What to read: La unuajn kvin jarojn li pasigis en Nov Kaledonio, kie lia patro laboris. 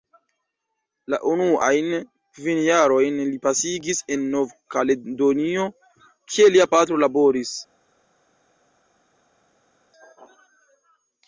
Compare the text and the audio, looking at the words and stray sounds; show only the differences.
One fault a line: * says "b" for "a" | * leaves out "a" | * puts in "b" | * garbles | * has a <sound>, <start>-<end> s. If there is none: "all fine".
all fine